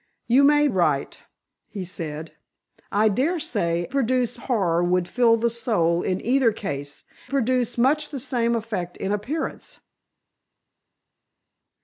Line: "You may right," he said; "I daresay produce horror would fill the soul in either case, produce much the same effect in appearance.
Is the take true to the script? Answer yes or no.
yes